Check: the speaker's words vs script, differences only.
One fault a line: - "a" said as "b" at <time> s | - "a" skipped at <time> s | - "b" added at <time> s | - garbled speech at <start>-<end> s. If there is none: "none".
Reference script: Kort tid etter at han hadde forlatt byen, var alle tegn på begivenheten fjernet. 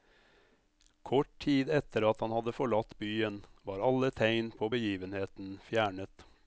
none